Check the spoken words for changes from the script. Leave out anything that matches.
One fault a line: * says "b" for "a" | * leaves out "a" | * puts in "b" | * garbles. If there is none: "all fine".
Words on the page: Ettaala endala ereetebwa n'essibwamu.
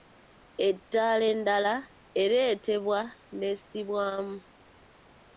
all fine